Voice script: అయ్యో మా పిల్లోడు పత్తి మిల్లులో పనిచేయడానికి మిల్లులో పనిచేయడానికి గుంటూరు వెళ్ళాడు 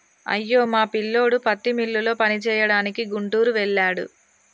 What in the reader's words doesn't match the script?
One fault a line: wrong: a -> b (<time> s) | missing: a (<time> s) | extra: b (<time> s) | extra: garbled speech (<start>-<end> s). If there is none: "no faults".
missing: మిల్లులో పనిచేయడానికి (3.0 s)